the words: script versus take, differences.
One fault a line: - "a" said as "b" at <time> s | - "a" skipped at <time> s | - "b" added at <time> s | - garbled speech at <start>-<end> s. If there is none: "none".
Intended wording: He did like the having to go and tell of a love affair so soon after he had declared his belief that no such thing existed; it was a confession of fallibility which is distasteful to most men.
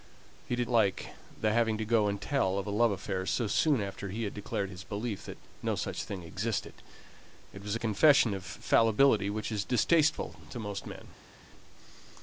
none